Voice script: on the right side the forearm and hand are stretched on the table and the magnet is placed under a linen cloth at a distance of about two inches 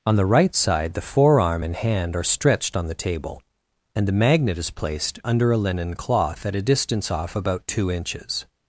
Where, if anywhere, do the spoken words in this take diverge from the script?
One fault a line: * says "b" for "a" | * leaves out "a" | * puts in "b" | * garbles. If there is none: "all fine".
* says "off" for "of"